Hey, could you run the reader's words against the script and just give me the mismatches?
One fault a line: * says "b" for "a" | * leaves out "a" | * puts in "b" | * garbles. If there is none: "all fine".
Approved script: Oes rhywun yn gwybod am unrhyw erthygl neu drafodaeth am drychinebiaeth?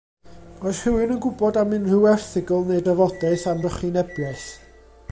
all fine